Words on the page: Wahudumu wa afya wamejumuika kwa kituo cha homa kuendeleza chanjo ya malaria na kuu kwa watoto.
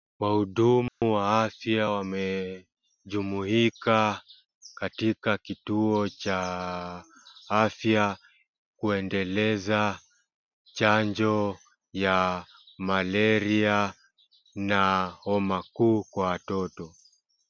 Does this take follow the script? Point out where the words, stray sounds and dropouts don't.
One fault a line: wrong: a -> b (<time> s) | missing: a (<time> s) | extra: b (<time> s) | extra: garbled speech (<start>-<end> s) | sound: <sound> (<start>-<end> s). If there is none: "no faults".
sound: dropout (0.9-1.0 s)
wrong: kwa -> katika (4.7 s)
wrong: homa -> afya (7.5 s)
extra: homa (15.1 s)